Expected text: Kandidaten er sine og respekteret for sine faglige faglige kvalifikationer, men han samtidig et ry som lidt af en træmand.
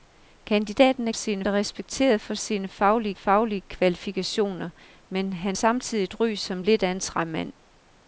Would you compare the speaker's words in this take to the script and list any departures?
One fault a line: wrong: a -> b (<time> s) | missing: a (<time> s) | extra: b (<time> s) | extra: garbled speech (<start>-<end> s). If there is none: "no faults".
no faults